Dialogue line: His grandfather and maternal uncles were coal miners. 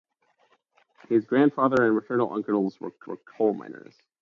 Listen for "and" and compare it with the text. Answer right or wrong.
right